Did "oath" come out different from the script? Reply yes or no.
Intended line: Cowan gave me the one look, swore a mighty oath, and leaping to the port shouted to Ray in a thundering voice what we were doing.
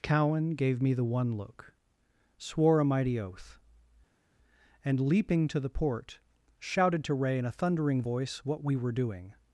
no